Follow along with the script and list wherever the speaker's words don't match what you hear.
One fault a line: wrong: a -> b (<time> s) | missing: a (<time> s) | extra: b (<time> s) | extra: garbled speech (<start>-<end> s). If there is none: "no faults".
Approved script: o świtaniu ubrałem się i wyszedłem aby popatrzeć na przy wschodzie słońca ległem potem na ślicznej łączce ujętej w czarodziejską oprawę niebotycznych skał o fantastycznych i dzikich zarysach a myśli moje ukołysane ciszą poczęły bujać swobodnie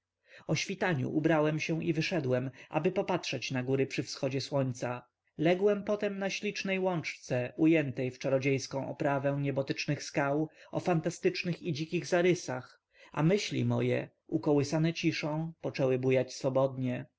extra: góry (3.6 s)